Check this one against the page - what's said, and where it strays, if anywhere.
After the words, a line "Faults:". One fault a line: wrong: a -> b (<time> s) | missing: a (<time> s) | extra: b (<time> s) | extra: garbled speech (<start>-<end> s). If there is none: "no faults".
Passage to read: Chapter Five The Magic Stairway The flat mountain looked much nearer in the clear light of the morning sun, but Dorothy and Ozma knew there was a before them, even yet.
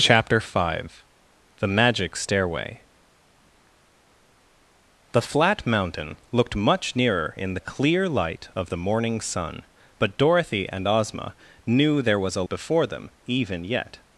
Chapter Five The Magic Stairway The flat mountain looked much nearer in the clear light of the morning sun, but Dorothy and Ozma knew there was a before them, even yet.
Faults:
no faults